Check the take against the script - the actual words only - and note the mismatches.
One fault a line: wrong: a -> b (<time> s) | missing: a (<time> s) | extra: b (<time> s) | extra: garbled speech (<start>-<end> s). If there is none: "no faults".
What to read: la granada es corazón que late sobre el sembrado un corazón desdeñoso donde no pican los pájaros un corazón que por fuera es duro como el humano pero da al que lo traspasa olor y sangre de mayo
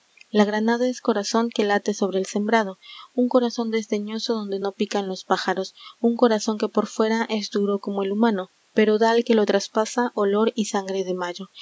no faults